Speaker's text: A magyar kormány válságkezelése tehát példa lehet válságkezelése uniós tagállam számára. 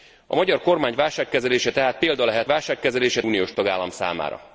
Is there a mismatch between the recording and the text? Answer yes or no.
no